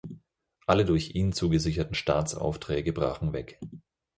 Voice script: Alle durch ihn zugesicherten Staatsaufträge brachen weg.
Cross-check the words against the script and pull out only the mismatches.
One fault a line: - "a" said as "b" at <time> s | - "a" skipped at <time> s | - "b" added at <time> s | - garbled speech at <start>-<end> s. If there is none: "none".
none